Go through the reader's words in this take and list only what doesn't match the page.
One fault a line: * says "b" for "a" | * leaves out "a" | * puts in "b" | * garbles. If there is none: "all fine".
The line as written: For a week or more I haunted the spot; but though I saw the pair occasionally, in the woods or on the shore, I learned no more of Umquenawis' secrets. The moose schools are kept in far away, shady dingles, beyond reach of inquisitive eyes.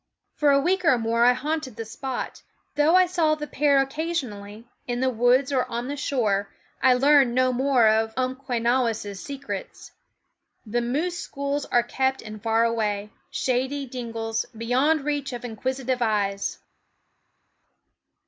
* leaves out "but"